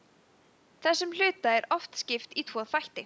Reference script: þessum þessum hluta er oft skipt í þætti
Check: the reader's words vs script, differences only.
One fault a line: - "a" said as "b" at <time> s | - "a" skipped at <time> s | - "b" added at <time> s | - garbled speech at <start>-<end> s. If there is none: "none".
- "þessum" skipped at 1.1 s
- "tvo" added at 2.5 s